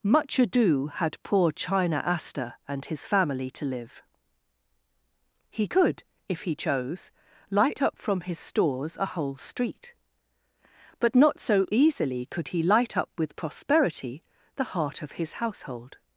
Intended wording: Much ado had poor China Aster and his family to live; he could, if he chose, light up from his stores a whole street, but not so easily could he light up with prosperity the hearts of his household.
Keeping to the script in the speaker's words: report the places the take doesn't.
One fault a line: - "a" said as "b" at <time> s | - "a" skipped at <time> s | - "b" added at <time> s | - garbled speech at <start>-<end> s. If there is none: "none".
- "hearts" said as "heart" at 14.7 s